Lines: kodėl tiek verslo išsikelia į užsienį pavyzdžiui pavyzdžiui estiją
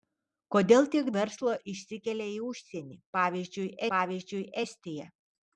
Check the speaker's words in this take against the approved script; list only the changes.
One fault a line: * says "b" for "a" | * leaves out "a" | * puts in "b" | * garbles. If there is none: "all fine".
all fine